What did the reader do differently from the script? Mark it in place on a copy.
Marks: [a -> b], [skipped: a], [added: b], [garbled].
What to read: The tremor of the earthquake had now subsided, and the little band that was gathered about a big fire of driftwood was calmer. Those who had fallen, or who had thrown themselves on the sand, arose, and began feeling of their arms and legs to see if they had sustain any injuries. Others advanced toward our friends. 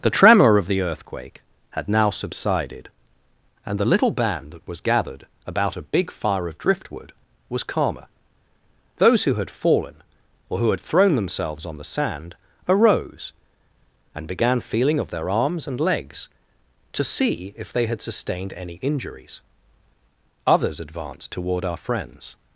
The tremor of the earthquake had now subsided, and the little band that was gathered about a big fire of driftwood was calmer. Those who had fallen, or who had thrown themselves on the sand, arose, and began feeling of their arms and legs to see if they had [sustain -> sustained] any injuries. Others advanced toward our friends.